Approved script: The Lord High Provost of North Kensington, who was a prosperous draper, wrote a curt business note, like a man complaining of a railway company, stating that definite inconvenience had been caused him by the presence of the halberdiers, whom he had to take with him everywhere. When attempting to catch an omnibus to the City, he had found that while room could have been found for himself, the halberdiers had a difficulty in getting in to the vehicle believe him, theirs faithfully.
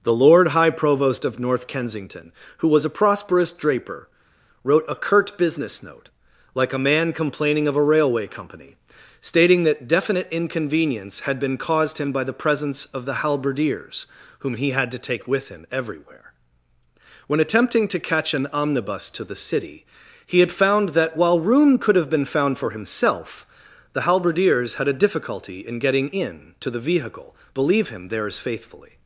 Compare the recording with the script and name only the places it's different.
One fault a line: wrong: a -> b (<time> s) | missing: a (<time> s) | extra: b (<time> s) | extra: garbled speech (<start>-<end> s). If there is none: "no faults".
no faults